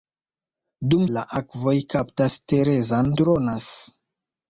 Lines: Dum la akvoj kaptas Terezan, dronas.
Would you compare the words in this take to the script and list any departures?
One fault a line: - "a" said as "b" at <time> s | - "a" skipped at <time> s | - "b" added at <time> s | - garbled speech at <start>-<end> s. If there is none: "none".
none